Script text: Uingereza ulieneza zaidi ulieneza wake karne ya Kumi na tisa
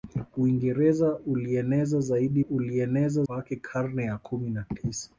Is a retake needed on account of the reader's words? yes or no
no